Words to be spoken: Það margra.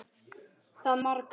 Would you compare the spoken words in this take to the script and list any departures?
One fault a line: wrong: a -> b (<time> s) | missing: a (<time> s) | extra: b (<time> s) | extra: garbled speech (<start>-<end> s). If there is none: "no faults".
no faults